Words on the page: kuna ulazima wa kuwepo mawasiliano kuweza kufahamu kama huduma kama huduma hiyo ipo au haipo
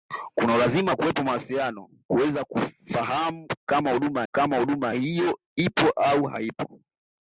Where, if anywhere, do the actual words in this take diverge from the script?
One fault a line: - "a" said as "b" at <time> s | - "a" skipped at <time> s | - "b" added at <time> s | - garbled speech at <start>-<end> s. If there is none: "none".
none